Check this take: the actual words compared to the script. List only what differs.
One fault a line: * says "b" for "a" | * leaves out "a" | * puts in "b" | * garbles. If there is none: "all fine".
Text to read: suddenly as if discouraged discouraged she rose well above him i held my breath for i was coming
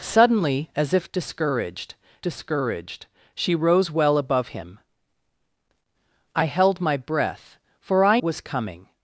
all fine